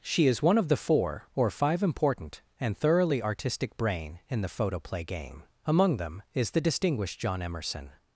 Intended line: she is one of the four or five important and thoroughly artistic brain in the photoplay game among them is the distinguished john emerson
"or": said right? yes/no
yes